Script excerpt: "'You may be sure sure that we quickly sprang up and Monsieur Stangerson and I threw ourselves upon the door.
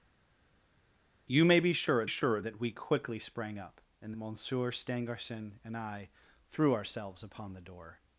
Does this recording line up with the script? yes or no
yes